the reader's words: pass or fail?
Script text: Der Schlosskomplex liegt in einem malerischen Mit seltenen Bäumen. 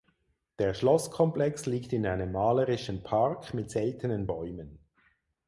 fail